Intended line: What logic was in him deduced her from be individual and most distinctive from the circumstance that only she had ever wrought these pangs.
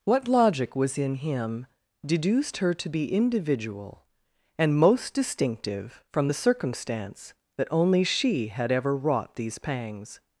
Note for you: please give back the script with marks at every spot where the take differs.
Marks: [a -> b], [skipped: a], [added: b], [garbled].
What logic was in him deduced her [from -> to] be individual and most distinctive from the circumstance that only she had ever wrought these pangs.